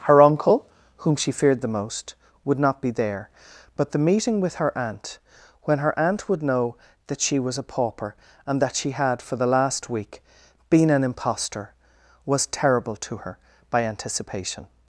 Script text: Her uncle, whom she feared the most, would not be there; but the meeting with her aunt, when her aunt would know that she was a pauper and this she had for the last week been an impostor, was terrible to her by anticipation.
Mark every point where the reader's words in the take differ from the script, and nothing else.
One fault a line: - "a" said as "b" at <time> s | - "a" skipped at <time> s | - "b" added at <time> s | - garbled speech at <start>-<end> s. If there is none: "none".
- "this" said as "that" at 8.6 s